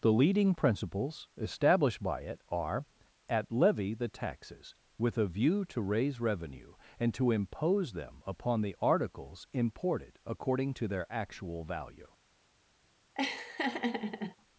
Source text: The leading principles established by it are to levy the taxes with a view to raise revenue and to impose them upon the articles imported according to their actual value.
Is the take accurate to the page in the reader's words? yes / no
no